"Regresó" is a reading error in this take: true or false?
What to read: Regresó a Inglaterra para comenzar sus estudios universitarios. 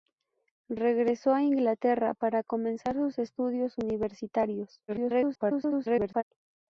false